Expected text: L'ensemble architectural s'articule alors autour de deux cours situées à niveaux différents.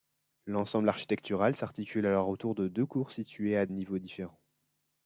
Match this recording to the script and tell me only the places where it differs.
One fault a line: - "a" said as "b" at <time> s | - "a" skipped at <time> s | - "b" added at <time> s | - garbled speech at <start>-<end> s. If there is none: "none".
none